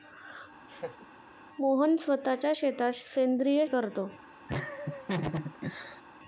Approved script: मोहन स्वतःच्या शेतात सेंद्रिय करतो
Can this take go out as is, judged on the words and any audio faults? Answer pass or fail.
fail